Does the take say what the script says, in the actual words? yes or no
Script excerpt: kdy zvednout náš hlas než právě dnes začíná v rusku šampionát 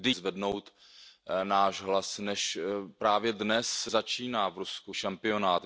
yes